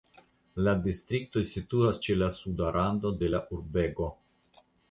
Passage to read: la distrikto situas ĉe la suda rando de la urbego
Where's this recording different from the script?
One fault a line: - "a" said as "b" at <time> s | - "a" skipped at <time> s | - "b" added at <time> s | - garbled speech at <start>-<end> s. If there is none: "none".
none